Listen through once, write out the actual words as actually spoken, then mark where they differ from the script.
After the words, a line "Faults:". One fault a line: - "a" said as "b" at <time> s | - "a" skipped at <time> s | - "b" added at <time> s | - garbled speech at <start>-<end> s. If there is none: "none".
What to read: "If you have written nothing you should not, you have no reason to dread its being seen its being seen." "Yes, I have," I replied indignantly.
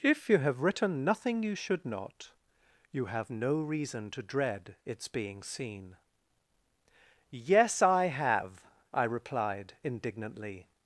"If you have written nothing you should not, you have no reason to dread its being seen." "Yes, I have," I replied indignantly.
Faults:
- "its being seen" skipped at 6.0 s